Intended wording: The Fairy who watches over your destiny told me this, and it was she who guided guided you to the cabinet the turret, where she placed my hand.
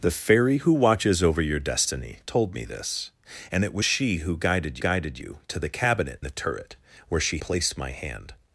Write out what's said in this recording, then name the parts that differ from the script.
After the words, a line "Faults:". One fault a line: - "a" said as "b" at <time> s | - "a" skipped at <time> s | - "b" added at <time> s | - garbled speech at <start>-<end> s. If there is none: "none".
The Fairy who watches over your destiny told me this, and it was she who guided guided you to the cabinet the turret, where she placed my hand.
Faults:
none